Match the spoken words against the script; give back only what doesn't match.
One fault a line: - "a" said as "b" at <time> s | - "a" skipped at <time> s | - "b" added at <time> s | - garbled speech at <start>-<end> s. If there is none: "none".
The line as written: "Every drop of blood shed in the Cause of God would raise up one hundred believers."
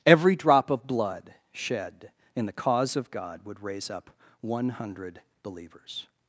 none